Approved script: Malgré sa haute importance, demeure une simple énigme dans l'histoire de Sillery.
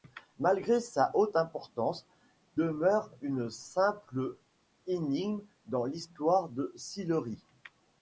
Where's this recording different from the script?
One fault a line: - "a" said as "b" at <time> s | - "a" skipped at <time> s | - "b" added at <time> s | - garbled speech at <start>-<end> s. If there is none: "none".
none